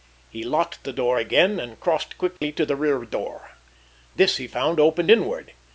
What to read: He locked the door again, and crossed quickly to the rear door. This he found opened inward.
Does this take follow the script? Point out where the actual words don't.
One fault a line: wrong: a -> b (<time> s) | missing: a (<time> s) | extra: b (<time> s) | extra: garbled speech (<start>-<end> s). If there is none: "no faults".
no faults